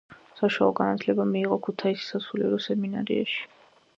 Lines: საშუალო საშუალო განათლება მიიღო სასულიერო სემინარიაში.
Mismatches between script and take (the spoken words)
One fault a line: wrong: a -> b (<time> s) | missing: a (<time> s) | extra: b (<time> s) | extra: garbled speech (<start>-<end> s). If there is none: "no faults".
missing: საშუალო (0.7 s)
extra: ქუთაისის (1.7 s)